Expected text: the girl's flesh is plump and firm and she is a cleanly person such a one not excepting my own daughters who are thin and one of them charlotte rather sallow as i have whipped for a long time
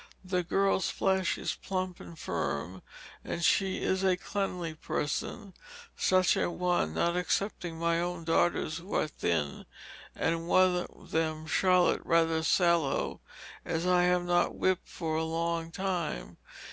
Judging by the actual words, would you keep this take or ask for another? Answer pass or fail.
fail